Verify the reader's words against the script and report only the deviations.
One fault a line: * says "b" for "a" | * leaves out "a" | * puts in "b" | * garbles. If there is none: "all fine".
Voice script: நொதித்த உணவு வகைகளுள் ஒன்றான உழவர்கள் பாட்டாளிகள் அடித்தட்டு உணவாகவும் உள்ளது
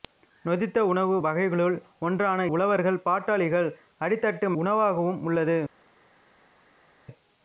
all fine